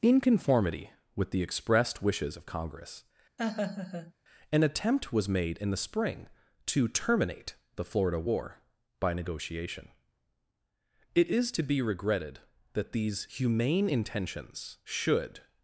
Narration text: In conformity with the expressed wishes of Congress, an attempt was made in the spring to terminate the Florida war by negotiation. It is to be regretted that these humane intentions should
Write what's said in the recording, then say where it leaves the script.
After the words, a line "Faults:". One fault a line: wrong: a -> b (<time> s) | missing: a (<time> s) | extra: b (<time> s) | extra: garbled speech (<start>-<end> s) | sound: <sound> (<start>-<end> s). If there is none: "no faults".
In conformity with the expressed wishes of Congress, an attempt was made in the spring to terminate the Florida war by negotiation. It is to be regretted that these humane intentions should
Faults:
sound: laugh (3.4-4.1 s)